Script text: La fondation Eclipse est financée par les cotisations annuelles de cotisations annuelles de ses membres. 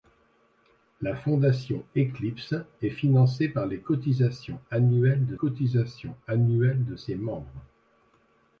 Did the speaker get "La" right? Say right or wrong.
right